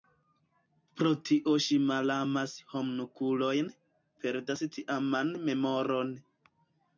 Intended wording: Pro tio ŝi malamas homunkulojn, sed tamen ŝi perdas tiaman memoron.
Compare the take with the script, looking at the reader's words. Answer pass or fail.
fail